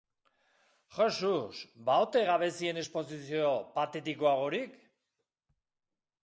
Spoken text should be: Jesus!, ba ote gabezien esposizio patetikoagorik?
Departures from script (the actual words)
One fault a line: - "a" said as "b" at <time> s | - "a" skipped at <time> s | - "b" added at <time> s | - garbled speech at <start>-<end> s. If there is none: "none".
none